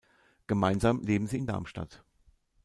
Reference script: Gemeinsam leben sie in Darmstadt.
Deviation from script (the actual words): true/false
false